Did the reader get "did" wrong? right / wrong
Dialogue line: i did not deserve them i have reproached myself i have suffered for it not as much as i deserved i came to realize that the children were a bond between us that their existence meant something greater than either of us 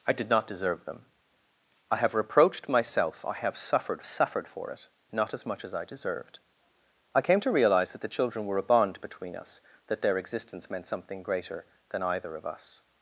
right